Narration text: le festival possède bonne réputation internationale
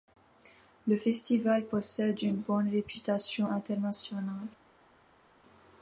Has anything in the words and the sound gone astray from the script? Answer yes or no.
yes